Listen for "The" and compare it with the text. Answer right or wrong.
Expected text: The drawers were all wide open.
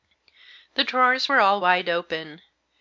right